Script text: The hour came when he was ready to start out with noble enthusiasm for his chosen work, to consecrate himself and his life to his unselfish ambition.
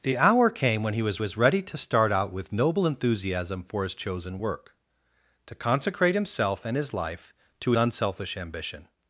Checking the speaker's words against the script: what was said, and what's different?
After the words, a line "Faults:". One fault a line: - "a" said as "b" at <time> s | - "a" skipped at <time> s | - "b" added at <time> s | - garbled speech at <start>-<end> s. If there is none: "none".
The hour came when he was was ready to start out with noble enthusiasm for his chosen work, to consecrate himself and his life to unselfish ambition.
Faults:
- "was" added at 1.2 s
- "his" skipped at 7.7 s